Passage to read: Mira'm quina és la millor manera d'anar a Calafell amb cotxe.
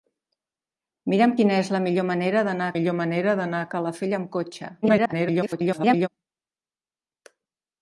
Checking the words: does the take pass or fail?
fail